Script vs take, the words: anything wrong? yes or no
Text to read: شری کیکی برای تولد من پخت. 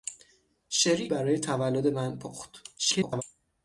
yes